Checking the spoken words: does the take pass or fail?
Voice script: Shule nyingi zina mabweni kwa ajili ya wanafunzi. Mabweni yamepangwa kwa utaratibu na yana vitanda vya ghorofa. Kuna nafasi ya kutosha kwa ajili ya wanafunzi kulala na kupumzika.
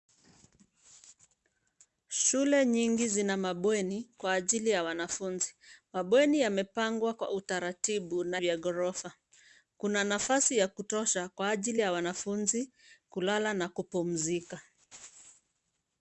fail